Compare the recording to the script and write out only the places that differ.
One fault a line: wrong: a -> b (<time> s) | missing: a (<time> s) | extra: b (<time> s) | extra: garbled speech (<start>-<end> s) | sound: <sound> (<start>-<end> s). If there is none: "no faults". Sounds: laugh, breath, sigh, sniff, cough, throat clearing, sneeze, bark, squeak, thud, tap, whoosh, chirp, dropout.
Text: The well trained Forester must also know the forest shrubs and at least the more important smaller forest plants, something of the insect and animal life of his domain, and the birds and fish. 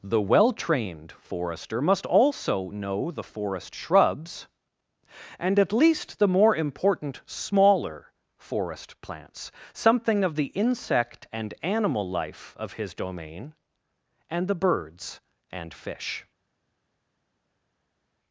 no faults